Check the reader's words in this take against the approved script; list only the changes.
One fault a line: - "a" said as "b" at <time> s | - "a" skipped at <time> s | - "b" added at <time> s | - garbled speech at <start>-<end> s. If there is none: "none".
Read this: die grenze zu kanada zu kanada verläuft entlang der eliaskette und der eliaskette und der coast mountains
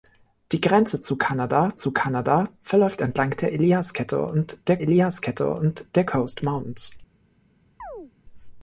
none